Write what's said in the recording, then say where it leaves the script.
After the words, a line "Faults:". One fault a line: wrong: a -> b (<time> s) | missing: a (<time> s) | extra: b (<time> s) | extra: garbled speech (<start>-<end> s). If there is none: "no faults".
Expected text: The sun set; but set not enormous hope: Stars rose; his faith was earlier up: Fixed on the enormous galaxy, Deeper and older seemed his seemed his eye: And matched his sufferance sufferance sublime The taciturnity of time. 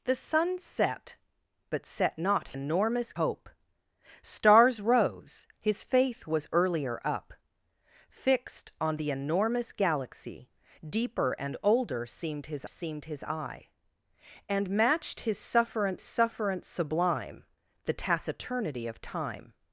The sun set; but set not enormous hope: Stars rose; his faith was earlier up: Fixed on the enormous galaxy, Deeper and older seemed his seemed his eye: And matched his sufferance sufferance sublime The taciturnity of time.
Faults:
no faults